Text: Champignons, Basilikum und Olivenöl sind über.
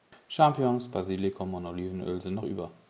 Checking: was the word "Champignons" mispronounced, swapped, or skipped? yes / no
no